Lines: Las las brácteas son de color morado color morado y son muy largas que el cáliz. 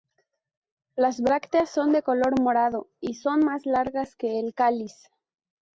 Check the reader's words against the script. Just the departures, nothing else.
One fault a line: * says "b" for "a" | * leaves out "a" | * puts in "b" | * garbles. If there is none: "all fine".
* leaves out "las"
* leaves out "color morado"
* says "más" for "muy"